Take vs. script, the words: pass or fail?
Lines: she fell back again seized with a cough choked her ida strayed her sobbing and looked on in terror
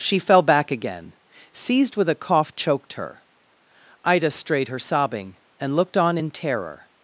pass